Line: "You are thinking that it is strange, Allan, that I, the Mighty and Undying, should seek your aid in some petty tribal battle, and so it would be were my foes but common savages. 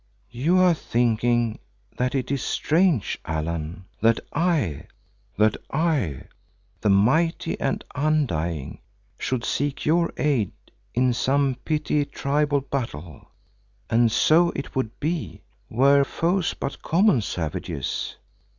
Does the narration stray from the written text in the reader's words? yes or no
yes